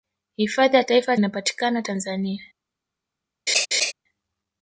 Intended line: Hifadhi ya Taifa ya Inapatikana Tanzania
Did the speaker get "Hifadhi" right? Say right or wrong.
right